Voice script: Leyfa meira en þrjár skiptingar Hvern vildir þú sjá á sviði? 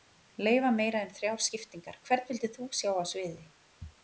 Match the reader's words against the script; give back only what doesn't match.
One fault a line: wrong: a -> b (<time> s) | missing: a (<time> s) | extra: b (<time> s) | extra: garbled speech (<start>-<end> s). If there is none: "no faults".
no faults